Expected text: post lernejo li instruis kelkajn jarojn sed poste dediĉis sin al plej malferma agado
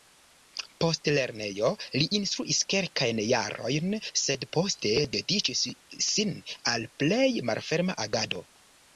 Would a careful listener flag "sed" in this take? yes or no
no